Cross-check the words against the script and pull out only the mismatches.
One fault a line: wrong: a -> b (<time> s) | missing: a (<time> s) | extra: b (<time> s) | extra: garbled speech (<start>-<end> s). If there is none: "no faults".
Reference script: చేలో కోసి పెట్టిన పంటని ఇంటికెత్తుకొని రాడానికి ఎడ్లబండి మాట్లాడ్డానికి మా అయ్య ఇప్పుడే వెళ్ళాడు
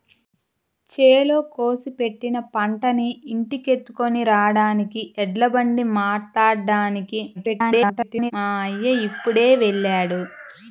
extra: garbled speech (7.3-8.3 s)